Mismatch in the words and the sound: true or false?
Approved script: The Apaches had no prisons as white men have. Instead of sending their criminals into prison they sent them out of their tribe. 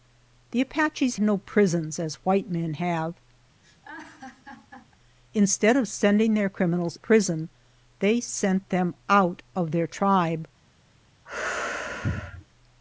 true